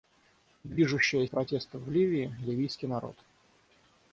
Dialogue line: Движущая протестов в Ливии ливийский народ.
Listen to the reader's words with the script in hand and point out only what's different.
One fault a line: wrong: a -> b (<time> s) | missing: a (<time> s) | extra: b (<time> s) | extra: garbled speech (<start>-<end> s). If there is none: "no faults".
no faults